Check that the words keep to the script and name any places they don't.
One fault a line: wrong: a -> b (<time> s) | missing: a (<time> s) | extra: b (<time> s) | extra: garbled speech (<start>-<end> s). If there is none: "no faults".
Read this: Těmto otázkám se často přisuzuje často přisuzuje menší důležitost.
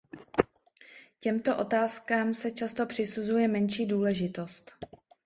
missing: často přisuzuje (3.5 s)